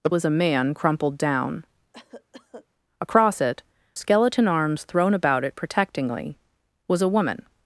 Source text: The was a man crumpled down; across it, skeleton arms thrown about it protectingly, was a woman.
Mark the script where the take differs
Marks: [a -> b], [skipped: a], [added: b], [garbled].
The was a man crumpled down; across it, skeleton arms thrown about it protectingly, was a woman.